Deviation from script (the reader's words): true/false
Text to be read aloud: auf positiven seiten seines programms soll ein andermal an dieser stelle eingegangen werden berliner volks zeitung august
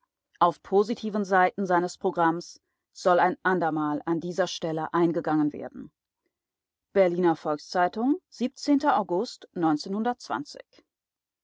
false